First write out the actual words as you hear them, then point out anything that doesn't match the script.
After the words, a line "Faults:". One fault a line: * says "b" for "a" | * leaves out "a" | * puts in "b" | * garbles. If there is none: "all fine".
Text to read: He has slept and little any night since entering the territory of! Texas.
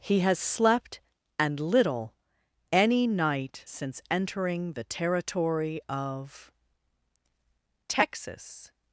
He has slept and little any night since entering the territory of! Texas.
Faults:
all fine